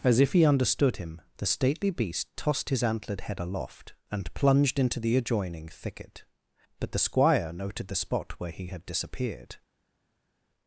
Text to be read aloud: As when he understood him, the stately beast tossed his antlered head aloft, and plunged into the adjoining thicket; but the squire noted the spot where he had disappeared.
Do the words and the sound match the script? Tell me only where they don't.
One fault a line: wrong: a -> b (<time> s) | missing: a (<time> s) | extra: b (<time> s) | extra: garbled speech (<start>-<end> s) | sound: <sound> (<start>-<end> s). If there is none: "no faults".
wrong: when -> if (0.2 s)